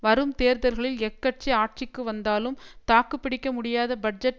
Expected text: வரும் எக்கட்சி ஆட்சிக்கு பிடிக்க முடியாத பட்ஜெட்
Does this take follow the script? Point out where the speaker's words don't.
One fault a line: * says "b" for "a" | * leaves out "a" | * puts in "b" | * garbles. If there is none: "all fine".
* puts in "தேர்தல்களில்"
* puts in "வந்தாலும் தாக்கு"